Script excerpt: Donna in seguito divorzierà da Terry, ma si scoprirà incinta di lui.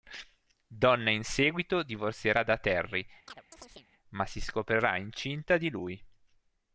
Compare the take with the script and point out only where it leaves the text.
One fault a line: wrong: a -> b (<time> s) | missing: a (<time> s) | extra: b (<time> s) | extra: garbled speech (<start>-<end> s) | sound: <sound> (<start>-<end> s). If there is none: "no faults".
sound: chirp (3.3-3.9 s)